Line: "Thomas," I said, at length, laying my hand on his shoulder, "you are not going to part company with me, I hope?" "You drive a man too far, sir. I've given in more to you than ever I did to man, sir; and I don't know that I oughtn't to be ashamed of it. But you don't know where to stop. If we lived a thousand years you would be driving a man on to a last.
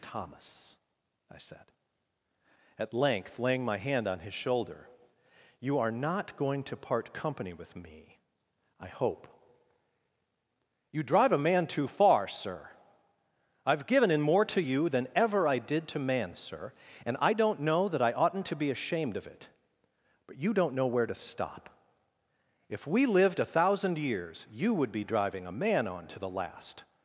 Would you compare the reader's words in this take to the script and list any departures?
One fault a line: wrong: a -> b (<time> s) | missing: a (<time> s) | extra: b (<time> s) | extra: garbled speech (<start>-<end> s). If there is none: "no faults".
wrong: a -> the (26.2 s)